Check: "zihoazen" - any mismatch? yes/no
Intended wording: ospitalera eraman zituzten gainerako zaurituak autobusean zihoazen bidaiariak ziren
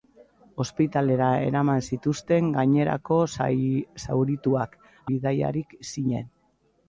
yes